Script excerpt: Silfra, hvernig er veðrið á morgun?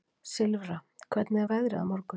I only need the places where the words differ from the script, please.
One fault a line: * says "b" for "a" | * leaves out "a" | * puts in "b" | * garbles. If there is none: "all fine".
all fine